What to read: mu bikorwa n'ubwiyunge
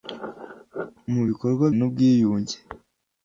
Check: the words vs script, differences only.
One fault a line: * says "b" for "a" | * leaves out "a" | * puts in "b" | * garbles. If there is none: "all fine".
all fine